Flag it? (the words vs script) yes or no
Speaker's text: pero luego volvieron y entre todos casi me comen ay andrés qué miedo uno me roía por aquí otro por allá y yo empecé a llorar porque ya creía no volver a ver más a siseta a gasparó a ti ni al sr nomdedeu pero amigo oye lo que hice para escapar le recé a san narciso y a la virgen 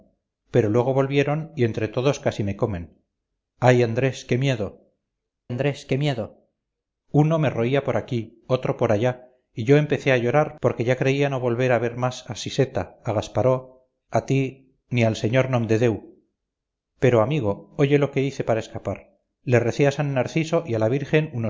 yes